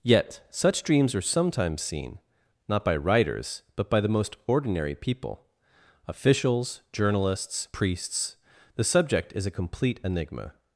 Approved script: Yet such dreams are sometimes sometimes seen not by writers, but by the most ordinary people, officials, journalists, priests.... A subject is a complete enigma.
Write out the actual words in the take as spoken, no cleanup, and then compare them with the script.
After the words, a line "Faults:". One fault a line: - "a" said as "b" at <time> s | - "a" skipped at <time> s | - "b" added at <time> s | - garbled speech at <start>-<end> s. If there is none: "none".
Yet such dreams are sometimes seen not by writers, but by the most ordinary people, officials, journalists, priests.... The subject is a complete enigma.
Faults:
- "sometimes" skipped at 1.8 s
- "A" said as "The" at 8.7 s